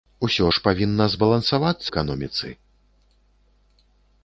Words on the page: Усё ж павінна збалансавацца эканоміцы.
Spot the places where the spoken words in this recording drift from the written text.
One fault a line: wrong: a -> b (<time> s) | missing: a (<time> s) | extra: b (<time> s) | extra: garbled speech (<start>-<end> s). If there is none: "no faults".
no faults